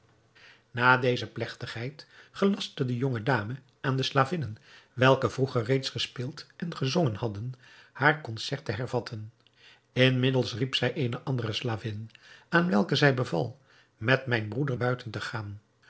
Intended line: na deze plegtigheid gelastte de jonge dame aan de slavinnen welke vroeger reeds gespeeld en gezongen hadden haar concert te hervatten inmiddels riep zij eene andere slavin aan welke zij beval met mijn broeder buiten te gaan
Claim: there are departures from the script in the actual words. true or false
false